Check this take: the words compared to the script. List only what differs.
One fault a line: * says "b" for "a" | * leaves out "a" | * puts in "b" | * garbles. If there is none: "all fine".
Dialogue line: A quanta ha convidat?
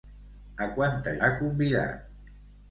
all fine